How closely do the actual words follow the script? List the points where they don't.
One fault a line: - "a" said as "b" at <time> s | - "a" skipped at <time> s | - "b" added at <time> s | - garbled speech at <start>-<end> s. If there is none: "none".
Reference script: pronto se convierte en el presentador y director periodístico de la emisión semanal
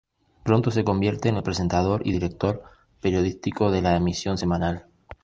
none